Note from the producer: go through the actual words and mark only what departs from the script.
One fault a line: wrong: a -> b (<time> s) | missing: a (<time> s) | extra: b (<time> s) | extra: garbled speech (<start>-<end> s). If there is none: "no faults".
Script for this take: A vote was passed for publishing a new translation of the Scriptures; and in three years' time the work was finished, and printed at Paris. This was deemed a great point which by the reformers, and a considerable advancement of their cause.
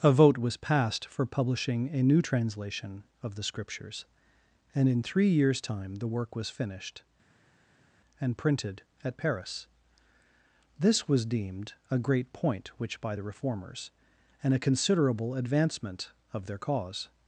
no faults